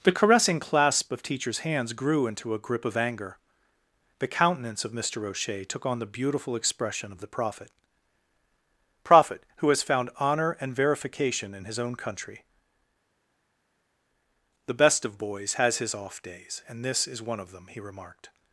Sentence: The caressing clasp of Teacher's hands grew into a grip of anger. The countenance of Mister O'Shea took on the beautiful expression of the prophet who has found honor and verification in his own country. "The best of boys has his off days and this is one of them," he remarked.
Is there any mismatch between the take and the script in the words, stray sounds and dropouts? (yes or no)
yes